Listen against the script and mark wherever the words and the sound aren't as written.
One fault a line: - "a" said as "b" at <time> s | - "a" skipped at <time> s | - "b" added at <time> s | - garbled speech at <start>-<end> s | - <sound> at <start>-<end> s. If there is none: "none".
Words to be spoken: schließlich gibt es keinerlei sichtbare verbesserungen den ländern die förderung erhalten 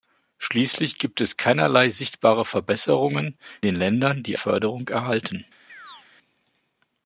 - chirp at 5.7-6.1 s